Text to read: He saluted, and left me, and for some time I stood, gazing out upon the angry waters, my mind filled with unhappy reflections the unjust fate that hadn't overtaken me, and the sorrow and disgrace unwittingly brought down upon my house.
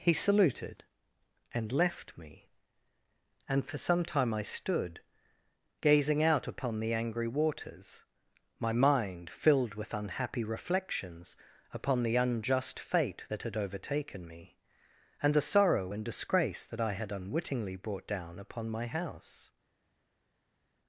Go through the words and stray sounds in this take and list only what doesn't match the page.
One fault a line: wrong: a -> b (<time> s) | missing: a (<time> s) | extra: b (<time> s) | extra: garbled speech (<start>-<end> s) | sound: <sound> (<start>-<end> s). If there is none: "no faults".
extra: upon (11.7 s)
wrong: hadn't -> had (13.4 s)
extra: that I had (16.7 s)